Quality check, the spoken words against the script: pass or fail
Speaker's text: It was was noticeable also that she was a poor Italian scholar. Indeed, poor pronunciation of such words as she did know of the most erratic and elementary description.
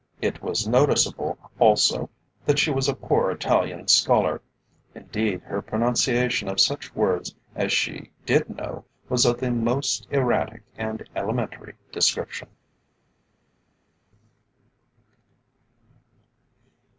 fail